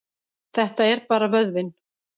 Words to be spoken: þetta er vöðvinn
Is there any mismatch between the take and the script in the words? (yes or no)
yes